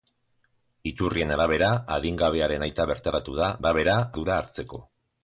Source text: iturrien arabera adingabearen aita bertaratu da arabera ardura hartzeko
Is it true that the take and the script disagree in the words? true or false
false